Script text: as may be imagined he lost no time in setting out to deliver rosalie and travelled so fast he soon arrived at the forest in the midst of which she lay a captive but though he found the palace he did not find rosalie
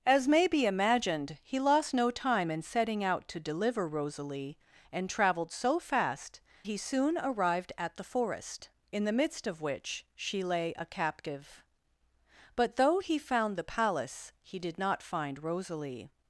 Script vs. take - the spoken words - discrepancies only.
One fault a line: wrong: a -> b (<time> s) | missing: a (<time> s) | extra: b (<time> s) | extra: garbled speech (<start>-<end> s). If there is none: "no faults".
no faults